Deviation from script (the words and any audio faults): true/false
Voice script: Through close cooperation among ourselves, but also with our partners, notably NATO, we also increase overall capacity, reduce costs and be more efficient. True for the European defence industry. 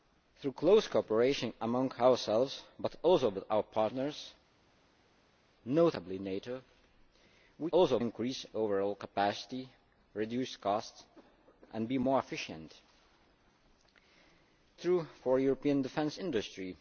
false